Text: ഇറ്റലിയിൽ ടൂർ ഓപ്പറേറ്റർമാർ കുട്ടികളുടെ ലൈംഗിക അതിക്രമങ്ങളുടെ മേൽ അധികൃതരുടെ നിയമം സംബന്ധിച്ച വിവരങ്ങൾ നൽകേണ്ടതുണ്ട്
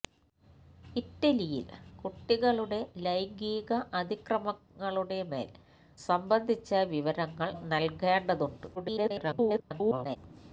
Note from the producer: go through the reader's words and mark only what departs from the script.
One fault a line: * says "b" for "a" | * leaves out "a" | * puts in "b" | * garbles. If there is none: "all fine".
* leaves out "ടൂർ ഓപ്പറേറ്റർമാർ"
* leaves out "അധികൃതരുടെ നിയമം"
* garbles